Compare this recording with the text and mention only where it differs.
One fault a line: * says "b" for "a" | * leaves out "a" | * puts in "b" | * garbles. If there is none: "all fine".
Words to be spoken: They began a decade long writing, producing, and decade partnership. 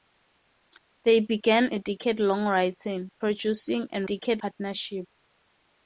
all fine